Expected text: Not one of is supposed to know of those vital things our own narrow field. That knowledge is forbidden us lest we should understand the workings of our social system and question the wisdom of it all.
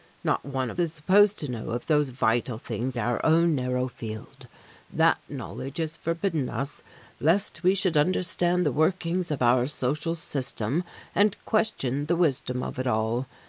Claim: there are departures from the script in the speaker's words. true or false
false